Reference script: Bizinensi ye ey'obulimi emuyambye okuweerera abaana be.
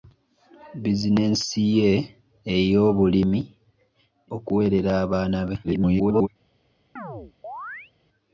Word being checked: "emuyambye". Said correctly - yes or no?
no